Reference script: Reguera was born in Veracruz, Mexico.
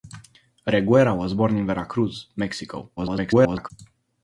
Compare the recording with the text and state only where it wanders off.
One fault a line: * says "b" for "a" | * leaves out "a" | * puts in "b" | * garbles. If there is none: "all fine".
* garbles